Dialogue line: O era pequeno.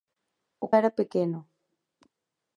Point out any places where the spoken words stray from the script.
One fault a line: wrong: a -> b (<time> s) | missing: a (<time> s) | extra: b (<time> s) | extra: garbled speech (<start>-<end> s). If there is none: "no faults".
no faults